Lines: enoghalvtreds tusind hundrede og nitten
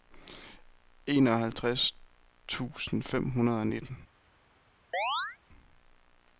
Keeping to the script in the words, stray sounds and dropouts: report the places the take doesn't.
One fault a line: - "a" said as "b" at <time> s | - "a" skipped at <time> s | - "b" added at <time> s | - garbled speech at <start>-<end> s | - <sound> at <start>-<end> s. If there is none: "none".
- "fem" added at 3.0 s
- chirp at 4.9-5.4 s